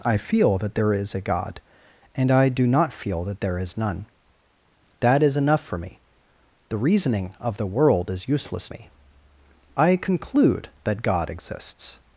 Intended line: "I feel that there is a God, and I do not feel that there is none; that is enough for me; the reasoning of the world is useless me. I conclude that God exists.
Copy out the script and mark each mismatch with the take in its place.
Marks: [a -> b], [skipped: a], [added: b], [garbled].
"I feel that there is a God, and I do not feel that there is none; that is enough for me; the reasoning of the world is useless me. I conclude that God exists.